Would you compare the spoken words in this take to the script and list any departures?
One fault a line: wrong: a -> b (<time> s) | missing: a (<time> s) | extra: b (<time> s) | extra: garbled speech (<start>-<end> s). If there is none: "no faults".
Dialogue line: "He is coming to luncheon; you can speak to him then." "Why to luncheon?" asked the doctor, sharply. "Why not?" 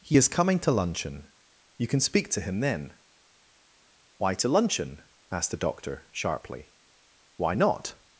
no faults